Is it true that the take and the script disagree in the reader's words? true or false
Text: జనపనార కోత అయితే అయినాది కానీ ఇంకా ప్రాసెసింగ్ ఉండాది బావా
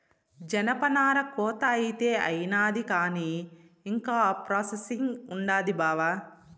false